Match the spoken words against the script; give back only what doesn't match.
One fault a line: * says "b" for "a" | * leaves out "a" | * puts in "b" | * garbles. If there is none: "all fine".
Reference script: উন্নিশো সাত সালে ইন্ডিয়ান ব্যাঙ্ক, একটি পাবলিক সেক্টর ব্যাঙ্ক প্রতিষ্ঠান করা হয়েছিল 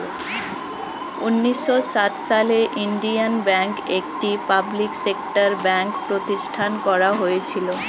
all fine